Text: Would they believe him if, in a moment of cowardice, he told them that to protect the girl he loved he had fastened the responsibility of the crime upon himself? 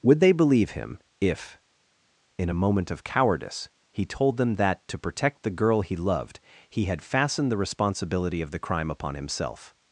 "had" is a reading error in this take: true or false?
false